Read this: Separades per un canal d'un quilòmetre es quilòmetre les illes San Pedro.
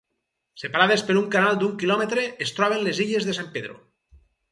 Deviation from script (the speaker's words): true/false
true